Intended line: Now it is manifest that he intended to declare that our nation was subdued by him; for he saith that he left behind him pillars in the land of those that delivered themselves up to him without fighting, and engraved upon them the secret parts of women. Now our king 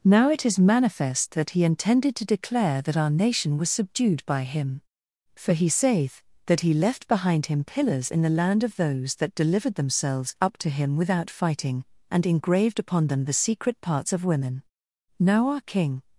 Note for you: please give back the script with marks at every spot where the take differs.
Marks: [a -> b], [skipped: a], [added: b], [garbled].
Now it is manifest that he intended to declare that our nation was subdued by him; for he saith that he left behind him pillars in the land of those that delivered themselves up to him without fighting, and engraved upon them the secret parts of women. Now our king